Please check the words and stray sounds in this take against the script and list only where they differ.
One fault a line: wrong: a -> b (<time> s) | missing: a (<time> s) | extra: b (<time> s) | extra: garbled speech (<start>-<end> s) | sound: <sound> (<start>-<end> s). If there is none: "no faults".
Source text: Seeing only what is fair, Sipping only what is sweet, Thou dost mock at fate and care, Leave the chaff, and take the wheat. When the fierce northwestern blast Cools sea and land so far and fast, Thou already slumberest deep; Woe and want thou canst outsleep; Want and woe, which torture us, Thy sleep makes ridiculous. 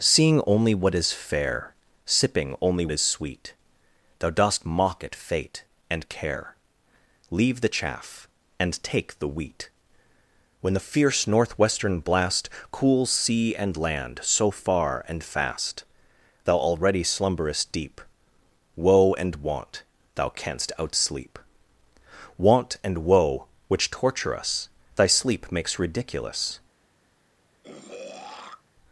missing: what (2.9 s)
sound: throat clearing (27.6-28.6 s)